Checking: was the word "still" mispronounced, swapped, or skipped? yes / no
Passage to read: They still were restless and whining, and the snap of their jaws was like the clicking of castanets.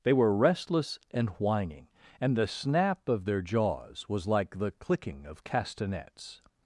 yes